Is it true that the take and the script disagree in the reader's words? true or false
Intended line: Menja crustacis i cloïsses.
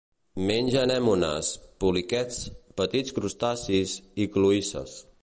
true